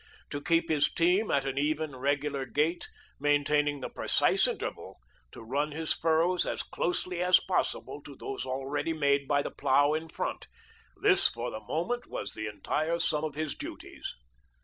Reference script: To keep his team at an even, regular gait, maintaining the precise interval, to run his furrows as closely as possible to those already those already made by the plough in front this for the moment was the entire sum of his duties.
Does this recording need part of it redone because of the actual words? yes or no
yes